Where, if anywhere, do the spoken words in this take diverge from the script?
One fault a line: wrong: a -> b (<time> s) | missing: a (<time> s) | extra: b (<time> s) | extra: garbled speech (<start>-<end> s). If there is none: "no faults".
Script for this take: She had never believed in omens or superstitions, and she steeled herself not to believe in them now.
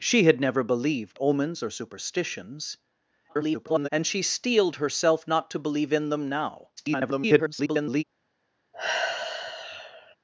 missing: in (1.2 s)
extra: garbled speech (3.3-3.9 s)
extra: garbled speech (6.8-8.0 s)